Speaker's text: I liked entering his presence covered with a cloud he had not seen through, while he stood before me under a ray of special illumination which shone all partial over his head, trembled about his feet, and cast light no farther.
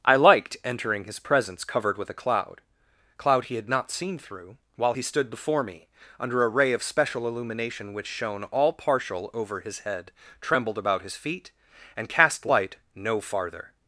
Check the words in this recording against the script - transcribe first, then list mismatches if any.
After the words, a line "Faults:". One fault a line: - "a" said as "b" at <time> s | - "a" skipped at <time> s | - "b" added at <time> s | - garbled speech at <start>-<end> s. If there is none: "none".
I liked entering his presence covered with a cloud cloud he had not seen through, while he stood before me under a ray of special illumination which shone all partial over his head, trembled about his feet, and cast light no farther.
Faults:
- "cloud" added at 3.2 s